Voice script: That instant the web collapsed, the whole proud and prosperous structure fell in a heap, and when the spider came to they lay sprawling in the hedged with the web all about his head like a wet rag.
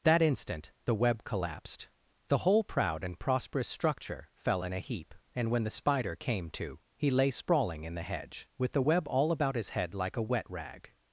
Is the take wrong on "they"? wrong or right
wrong